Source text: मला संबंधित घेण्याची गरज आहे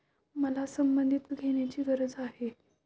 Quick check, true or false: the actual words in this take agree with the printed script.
true